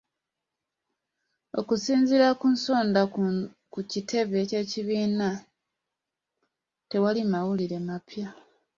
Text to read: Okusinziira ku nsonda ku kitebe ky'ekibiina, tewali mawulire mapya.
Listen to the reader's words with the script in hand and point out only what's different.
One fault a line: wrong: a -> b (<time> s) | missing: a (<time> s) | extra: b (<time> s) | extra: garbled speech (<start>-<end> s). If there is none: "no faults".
no faults